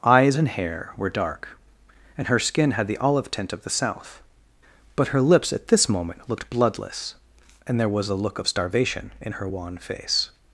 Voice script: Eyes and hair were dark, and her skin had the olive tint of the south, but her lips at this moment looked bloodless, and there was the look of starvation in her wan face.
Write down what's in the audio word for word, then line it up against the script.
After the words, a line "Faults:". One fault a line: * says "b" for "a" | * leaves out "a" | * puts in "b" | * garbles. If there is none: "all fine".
Eyes and hair were dark, and her skin had the olive tint of the south, but her lips at this moment looked bloodless, and there was a look of starvation in her wan face.
Faults:
* says "a" for "the"